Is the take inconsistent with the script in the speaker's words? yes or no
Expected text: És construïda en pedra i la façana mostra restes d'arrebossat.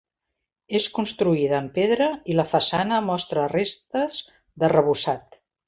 no